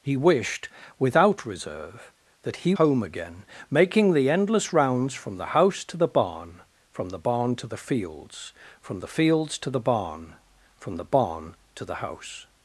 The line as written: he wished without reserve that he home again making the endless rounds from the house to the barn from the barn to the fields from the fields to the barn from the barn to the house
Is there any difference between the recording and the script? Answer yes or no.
no